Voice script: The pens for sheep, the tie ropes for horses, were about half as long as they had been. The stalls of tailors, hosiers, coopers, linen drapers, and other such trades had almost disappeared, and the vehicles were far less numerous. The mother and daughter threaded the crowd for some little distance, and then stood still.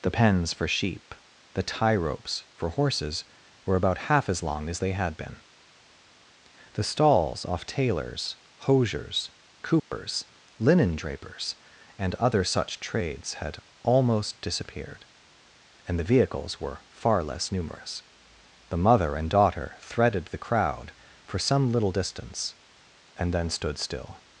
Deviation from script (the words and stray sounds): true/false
true